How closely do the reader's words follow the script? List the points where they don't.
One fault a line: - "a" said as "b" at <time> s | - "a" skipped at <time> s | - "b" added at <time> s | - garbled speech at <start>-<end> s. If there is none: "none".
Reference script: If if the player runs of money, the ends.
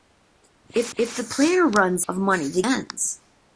none